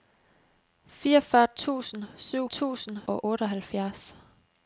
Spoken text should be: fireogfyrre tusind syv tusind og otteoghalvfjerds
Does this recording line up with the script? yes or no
yes